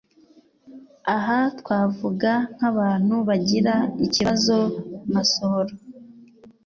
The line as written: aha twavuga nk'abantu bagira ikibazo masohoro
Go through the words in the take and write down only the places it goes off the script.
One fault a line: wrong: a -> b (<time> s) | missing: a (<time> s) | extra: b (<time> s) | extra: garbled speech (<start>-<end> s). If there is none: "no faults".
no faults